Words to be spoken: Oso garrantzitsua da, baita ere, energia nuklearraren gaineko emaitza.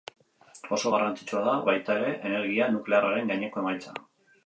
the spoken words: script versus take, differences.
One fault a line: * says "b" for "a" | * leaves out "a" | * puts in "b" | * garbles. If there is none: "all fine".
all fine